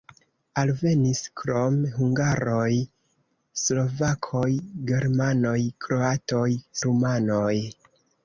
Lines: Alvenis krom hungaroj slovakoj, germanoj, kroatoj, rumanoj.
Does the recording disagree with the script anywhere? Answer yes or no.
no